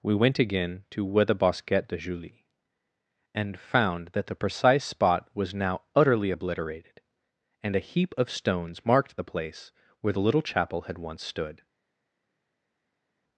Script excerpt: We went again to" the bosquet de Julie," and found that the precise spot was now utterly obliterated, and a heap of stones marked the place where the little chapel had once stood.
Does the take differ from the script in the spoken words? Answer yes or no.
yes